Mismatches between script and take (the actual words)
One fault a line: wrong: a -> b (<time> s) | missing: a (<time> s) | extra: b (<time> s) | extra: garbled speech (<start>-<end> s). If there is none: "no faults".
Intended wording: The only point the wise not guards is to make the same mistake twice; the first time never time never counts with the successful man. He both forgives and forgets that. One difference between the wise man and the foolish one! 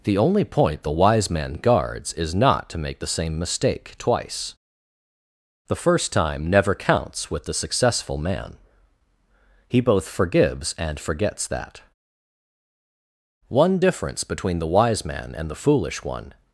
wrong: not -> man (1.3 s)
extra: not (2.3 s)
missing: time never (6.7 s)